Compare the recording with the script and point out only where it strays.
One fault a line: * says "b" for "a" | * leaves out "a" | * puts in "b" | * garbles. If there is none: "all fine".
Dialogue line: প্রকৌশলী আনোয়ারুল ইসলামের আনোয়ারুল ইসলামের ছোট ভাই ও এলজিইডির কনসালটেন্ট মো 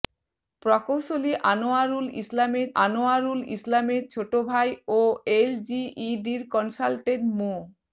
all fine